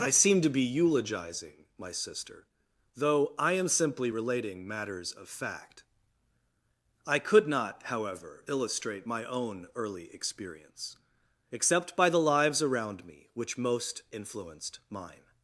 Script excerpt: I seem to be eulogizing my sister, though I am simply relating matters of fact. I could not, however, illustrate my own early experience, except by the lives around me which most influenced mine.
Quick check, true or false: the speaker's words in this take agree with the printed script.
true